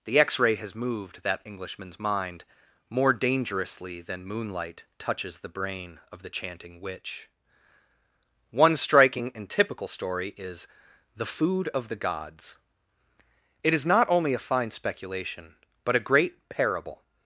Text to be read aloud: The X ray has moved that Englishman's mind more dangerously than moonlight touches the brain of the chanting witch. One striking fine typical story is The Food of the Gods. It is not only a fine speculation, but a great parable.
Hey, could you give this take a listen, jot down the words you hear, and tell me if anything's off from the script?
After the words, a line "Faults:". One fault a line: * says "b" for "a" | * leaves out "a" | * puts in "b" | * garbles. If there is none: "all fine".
The X ray has moved that Englishman's mind more dangerously than moonlight touches the brain of the chanting witch. One striking and typical story is The Food of the Gods. It is not only a fine speculation, but a great parable.
Faults:
* says "and" for "fine"